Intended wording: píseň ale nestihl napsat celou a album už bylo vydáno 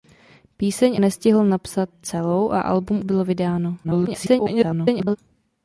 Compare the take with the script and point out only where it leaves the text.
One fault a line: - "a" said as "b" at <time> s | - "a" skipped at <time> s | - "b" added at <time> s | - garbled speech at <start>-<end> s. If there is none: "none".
- "ale" skipped at 1.0 s
- "už" skipped at 3.0 s
- garbled speech at 3.8-5.2 s